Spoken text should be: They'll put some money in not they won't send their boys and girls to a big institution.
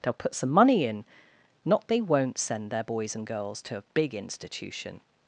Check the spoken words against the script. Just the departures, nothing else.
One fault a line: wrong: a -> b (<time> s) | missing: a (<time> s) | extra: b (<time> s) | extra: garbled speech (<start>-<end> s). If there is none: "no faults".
no faults